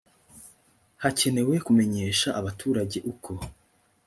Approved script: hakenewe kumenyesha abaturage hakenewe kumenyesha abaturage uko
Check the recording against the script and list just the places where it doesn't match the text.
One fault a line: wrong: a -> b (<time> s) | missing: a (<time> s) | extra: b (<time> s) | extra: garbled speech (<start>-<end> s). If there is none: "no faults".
missing: hakenewe kumenyesha abaturage (3.0 s)